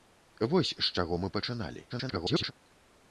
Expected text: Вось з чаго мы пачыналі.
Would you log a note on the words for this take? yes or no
yes